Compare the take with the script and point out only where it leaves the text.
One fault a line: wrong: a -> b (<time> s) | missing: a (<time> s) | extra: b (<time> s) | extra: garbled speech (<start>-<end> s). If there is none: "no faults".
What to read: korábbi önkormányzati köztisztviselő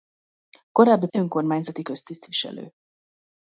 no faults